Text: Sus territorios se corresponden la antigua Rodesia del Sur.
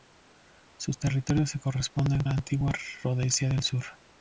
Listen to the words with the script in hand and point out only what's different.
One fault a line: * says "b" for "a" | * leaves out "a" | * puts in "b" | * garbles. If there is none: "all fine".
all fine